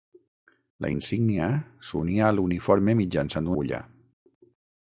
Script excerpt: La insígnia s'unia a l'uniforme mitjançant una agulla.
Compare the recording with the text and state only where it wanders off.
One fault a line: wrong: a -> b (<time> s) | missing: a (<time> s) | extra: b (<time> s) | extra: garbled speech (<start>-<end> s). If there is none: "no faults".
missing: una (3.5 s)